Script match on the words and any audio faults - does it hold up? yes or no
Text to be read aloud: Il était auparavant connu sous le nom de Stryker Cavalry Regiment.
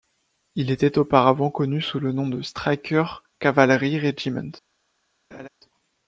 no